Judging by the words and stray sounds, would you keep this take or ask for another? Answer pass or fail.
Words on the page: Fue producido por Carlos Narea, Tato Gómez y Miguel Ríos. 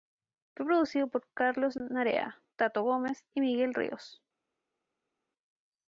pass